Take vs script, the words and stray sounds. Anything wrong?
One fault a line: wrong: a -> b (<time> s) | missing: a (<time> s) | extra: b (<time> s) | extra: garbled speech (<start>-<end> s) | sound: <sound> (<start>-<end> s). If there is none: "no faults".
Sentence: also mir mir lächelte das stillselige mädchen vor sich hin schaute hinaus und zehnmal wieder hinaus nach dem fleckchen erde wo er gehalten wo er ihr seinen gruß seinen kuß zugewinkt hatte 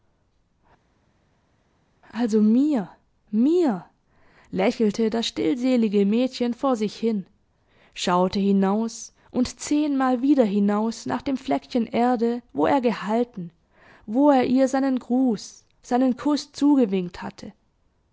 no faults